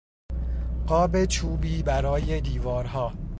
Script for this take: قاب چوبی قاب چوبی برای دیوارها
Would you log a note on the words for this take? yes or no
yes